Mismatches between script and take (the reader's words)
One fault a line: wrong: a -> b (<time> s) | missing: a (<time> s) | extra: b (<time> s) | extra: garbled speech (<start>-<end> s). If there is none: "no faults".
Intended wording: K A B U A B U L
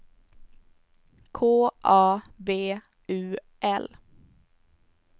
missing: A B U (3.4 s)